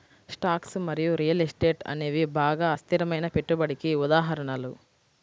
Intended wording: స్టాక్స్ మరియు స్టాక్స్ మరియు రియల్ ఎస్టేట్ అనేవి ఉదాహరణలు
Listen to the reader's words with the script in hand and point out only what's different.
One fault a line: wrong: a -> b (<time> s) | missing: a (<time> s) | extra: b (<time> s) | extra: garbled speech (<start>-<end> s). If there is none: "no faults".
missing: స్టాక్స్ మరియు (1.1 s)
extra: బాగా అస్థిరమైన పెట్టుబడికి (2.4 s)